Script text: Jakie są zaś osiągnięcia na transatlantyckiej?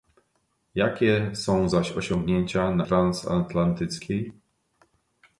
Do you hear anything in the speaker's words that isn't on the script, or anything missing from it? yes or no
no